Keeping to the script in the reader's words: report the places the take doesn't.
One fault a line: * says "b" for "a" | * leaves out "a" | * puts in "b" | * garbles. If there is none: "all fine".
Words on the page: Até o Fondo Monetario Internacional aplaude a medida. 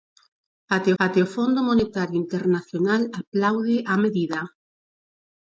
* puts in "até"